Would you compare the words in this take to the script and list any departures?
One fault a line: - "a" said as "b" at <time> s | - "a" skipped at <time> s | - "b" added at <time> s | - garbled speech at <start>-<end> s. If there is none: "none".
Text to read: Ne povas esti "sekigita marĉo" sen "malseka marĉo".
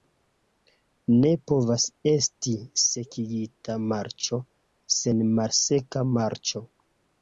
none